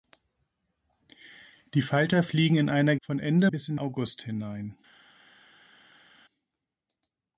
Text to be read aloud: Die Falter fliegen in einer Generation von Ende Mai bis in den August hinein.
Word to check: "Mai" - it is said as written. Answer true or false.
false